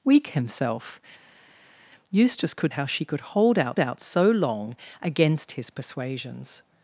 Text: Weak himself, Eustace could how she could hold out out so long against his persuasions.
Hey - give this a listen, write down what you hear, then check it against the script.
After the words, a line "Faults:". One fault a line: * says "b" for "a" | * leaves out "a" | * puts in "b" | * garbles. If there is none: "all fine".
Weak himself, Eustace could how she could hold out out so long against his persuasions.
Faults:
all fine